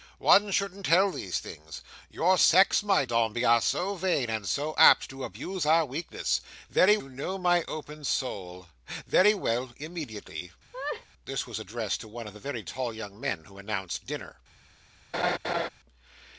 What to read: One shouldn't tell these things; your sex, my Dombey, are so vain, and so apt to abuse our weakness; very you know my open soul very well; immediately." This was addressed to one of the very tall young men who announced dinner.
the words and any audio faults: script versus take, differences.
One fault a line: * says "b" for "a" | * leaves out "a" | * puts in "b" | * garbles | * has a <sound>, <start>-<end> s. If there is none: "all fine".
* has a laugh, 10.7-11.1 s
* has a laugh, 15.1-15.7 s